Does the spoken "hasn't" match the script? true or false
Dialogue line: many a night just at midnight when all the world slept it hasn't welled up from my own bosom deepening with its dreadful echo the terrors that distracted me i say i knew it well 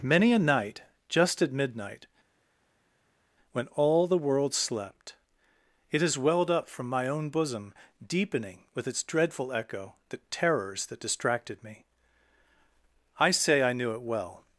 false